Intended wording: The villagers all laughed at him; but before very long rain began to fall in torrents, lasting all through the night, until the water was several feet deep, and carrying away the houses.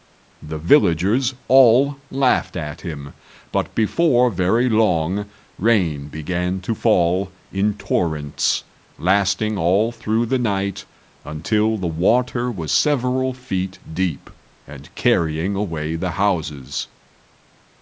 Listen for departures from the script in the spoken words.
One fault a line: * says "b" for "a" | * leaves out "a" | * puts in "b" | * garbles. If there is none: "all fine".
all fine